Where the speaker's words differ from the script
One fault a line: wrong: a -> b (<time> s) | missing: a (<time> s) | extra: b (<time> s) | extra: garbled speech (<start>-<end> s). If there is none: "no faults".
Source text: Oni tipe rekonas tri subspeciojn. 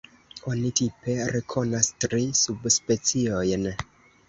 no faults